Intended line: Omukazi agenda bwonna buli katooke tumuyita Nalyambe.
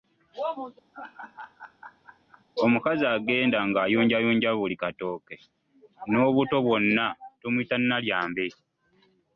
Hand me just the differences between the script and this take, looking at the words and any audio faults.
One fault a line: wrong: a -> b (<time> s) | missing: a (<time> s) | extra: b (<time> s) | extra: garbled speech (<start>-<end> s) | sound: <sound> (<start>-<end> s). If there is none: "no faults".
sound: laugh (0.9-2.4 s)
wrong: bwonna -> ng'ayunjayunja (3.7 s)
extra: n'obuto bwonna (6.1 s)